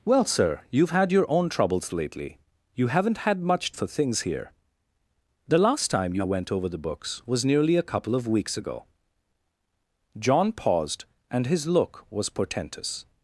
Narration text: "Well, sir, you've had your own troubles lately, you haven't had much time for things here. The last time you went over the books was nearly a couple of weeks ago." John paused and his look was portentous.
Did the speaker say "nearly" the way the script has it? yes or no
yes